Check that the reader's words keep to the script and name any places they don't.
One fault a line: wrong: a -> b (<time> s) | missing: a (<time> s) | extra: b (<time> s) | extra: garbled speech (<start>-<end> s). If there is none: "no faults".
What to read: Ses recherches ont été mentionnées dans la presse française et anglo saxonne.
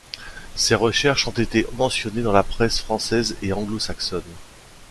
no faults